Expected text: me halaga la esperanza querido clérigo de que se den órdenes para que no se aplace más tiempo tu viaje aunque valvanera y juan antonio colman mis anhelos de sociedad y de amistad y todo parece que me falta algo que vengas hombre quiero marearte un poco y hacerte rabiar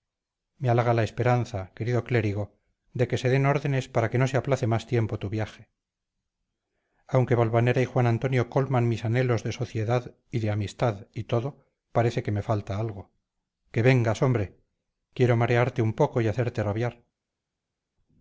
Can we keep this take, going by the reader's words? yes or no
yes